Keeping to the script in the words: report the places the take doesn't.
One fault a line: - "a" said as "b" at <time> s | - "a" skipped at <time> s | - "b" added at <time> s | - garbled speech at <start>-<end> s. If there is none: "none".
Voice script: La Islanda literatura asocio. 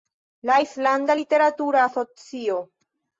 none